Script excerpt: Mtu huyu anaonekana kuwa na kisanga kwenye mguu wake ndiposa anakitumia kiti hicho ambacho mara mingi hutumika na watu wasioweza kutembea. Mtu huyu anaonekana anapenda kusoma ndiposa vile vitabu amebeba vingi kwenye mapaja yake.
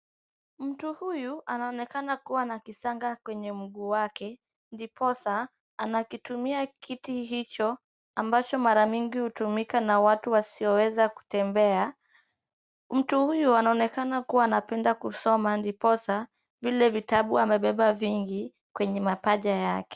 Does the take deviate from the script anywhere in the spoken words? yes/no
yes